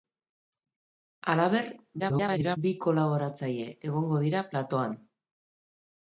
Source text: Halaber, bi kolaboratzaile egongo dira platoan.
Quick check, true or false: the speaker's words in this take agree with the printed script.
false